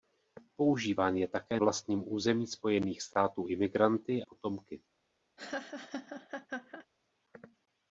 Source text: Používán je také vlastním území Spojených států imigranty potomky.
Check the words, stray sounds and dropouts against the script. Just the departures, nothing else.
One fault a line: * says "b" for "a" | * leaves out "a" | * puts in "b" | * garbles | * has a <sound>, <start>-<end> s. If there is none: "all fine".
* has a laugh, 5.4-6.9 s